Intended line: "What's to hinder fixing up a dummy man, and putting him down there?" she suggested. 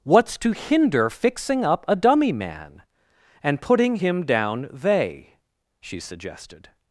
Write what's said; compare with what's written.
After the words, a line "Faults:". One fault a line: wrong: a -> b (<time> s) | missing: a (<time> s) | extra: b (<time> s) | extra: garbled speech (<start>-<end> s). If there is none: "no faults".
"What's to hinder fixing up a dummy man, and putting him down they?" she suggested.
Faults:
wrong: there -> they (4.7 s)